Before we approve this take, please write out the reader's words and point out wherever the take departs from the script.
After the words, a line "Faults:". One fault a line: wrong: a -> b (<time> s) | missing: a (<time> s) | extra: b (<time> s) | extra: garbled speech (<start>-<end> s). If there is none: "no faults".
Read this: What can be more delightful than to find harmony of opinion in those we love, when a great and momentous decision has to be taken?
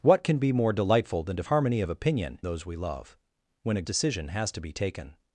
What can be more delightful than to harmony of opinion those we love, when a decision has to be taken?
Faults:
missing: find (1.4 s)
missing: in (2.4 s)
missing: great and momentous (3.9 s)